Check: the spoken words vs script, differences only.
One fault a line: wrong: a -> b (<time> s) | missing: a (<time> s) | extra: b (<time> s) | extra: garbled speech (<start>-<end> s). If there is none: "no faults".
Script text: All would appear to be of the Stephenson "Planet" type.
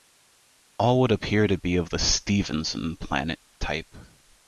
no faults